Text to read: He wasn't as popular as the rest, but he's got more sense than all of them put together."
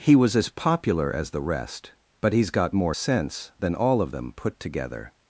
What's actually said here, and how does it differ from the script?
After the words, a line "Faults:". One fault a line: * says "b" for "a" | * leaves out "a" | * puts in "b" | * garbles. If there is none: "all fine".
He was as popular as the rest, but he's got more sense than all of them put together."
Faults:
* says "was" for "wasn't"